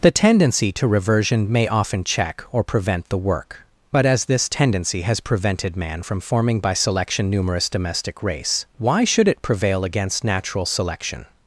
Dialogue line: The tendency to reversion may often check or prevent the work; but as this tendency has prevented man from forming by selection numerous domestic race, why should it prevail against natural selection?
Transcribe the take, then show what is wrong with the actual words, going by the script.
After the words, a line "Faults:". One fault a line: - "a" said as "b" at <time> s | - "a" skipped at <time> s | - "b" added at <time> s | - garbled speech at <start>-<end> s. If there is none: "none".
The tendency to reversion may often check or prevent the work; but as this tendency has prevented man from forming by selection numerous domestic race, why should it prevail against natural selection?
Faults:
none